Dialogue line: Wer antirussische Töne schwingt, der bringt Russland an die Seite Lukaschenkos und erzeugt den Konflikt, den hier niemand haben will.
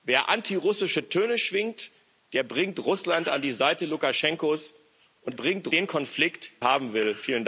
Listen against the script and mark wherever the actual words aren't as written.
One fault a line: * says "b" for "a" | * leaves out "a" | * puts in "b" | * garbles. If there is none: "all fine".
* says "bringt" for "erzeugt"
* leaves out "den hier niemand"